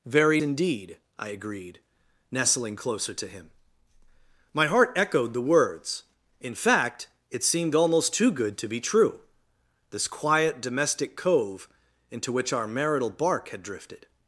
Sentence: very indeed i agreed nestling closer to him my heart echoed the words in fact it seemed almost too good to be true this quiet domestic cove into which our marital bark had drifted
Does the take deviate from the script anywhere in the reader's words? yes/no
no